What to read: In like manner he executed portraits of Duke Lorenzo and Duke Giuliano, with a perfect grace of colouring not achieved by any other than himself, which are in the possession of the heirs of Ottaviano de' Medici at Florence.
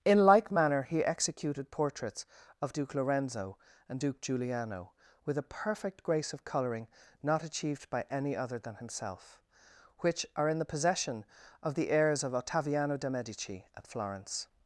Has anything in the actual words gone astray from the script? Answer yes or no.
no